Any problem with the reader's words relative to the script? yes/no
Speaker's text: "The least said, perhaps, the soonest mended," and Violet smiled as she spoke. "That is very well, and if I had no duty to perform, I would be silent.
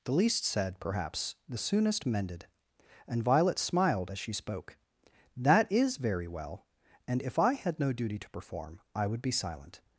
no